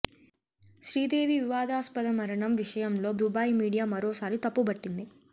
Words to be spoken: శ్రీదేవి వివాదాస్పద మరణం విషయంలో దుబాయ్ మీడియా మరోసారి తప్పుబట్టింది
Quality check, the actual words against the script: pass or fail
pass